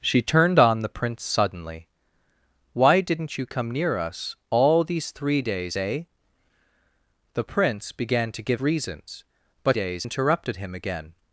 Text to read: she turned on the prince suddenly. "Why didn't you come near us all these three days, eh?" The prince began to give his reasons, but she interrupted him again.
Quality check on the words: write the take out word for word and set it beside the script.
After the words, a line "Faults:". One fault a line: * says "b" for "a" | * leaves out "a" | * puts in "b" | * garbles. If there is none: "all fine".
she turned on the prince suddenly. "Why didn't you come near us all these three days, eh?" The prince began to give reasons, but days interrupted him again.
Faults:
* leaves out "his"
* says "days" for "she"